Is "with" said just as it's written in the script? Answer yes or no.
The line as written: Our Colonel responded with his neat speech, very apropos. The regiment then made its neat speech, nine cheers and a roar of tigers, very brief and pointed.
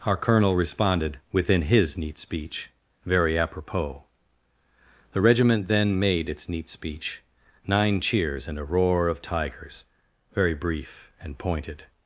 no